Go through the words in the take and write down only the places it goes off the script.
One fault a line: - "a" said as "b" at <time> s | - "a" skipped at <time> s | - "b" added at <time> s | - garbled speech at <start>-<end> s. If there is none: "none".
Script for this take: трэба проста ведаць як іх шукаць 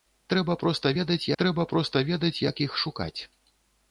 - "трэба проста ведаць" added at 1.4 s